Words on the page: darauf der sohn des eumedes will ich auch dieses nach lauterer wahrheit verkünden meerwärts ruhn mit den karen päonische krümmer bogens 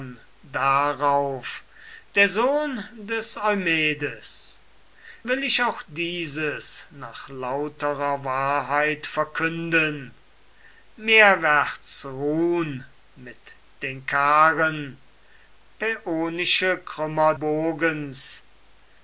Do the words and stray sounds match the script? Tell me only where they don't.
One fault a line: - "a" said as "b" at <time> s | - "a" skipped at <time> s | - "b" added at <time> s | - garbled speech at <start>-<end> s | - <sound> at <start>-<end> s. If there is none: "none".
none